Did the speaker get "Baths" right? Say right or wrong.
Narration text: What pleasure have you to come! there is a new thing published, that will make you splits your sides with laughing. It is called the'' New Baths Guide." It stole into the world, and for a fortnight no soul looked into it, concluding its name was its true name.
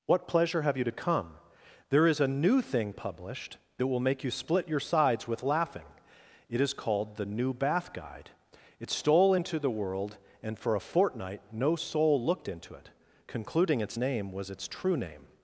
wrong